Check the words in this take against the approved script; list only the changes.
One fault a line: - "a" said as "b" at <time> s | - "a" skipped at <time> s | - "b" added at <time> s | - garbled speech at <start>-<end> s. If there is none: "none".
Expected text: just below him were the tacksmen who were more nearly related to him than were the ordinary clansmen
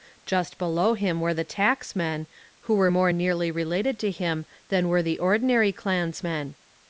none